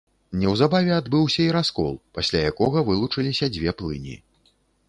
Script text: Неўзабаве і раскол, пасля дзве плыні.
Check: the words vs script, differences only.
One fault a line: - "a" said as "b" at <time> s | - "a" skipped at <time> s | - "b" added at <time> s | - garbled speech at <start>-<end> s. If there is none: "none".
- "адбыўся" added at 1.0 s
- "якога вылучыліся" added at 2.5 s